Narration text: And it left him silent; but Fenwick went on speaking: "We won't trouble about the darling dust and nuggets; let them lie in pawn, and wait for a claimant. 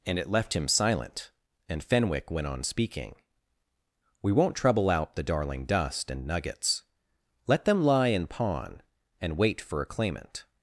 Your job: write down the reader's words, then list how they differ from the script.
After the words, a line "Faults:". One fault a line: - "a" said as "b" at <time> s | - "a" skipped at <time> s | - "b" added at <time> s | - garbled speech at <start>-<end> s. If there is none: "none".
And it left him silent; and Fenwick went on speaking: "We won't trouble out the darling dust and nuggets; let them lie in pawn, and wait for a claimant.
Faults:
- "but" said as "and" at 1.7 s
- "about" said as "out" at 4.9 s